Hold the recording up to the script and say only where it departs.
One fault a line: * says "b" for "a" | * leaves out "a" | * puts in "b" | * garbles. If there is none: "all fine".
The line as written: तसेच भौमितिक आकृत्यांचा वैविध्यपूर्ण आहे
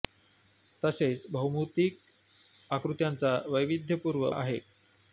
all fine